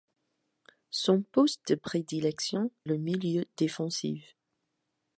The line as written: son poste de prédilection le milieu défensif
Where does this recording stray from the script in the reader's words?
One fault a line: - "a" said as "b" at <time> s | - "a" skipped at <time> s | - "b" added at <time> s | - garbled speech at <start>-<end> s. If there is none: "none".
none